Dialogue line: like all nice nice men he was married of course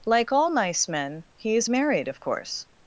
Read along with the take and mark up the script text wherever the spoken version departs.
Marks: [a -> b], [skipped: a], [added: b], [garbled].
like all nice [skipped: nice] men he [was -> is] married of course